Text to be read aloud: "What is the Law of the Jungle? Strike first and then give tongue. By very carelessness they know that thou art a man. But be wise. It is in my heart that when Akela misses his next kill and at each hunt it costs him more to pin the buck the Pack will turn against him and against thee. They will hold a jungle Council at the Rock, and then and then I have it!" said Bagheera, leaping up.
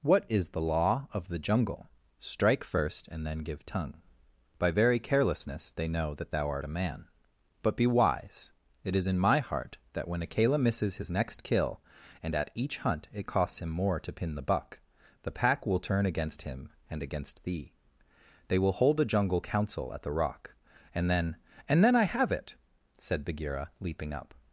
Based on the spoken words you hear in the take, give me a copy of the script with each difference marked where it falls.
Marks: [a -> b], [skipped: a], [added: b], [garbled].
"What is the Law of the Jungle? Strike first and then give tongue. By very carelessness they know that thou art a man. But be wise. It is in my heart that when Akela misses his next kill and at each hunt it costs him more to pin the buck the Pack will turn against him and against thee. They will hold a jungle Council at the Rock, and then and then I have it!" said Bagheera, leaping up.